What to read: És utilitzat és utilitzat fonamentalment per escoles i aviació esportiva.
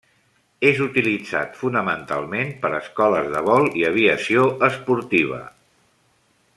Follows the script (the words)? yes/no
no